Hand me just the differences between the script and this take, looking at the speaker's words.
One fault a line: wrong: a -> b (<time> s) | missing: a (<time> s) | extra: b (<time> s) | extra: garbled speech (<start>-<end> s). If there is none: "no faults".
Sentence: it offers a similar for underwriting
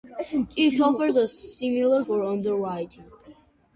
no faults